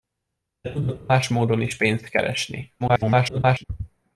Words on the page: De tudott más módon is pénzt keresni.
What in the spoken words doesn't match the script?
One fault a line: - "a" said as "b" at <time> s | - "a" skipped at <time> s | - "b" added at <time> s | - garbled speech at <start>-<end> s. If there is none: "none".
- garbled speech at 2.8-3.6 s